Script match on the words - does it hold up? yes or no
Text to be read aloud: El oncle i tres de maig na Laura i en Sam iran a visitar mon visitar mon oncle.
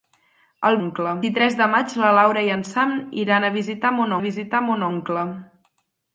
yes